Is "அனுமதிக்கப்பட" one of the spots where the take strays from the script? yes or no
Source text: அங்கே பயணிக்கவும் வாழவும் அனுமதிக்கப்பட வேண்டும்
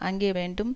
yes